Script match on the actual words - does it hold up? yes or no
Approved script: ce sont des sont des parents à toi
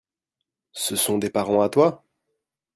no